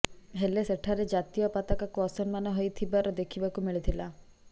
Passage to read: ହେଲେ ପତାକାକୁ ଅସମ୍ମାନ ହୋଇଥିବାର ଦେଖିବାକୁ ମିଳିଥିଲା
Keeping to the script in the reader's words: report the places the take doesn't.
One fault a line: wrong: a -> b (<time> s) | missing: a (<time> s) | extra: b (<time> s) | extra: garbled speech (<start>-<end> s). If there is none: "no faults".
extra: ସେଠାରେ ଜାତୀୟ (0.6 s)